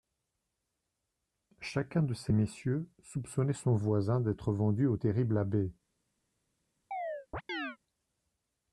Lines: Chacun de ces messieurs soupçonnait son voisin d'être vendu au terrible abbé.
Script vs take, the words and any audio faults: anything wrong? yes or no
yes